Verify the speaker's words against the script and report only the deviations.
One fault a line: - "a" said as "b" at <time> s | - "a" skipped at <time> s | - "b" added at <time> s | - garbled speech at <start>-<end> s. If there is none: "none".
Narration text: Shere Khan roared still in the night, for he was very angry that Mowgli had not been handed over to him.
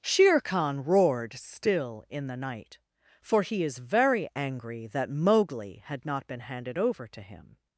- "was" said as "is" at 3.6 s